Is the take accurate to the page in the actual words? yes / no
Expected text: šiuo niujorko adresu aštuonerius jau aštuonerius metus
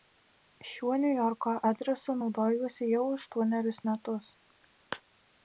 no